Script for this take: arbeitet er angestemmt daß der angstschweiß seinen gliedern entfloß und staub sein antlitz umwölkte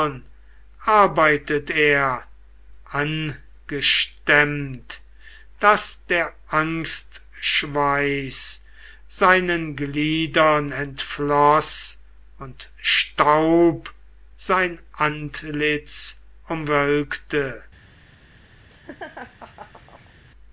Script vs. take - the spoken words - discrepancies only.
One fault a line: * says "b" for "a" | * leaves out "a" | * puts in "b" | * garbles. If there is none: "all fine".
all fine